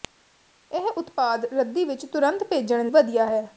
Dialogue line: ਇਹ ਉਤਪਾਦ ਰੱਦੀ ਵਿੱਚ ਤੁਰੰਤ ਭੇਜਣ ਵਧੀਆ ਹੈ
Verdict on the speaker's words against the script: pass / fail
pass